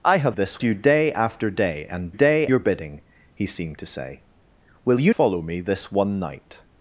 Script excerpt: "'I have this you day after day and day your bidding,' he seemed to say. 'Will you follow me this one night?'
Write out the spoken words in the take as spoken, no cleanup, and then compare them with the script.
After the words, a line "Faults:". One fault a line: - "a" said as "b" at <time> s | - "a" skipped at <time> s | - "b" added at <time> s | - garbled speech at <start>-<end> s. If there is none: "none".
"'I have this you day after day and day your bidding,' he seemed to say. 'Will you follow me this one night?'
Faults:
none